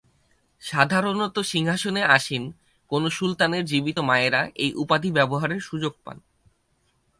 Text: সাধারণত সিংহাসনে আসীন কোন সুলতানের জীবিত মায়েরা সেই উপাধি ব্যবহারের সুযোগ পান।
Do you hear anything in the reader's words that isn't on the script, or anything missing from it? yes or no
yes